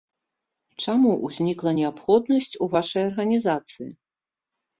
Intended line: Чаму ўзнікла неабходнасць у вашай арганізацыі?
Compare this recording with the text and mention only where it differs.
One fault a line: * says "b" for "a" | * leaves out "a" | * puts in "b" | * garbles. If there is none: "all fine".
all fine